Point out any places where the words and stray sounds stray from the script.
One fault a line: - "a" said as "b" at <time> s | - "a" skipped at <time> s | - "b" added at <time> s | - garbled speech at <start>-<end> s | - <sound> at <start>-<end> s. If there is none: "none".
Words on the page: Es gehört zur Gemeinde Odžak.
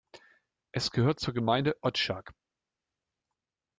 none